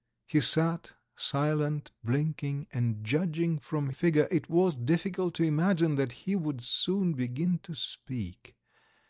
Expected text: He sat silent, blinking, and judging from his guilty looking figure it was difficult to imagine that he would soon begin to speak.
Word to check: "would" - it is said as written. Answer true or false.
true